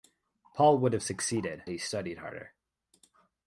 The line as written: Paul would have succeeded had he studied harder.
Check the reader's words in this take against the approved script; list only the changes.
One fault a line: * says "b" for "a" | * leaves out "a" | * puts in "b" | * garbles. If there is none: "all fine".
* leaves out "had"